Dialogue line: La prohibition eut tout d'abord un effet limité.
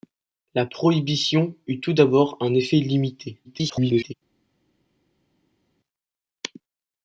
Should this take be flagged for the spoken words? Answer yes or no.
yes